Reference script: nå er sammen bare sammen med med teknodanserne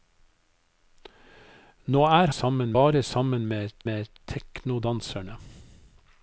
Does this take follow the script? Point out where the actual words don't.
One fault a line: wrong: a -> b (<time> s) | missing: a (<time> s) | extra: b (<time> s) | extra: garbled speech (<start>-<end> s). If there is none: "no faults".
no faults